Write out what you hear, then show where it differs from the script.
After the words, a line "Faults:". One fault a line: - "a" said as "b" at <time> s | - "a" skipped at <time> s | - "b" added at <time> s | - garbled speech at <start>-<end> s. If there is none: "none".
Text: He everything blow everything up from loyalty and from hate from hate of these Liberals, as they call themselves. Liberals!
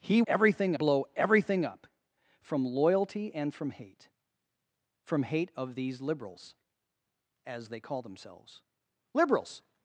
He everything blow everything up from loyalty and from hate from hate of these Liberals, as they call themselves. Liberals!
Faults:
none